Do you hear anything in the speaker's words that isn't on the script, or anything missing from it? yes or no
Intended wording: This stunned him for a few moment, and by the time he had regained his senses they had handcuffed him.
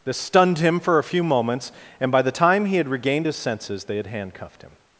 yes